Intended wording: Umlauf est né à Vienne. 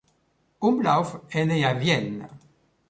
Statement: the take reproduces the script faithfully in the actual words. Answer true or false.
true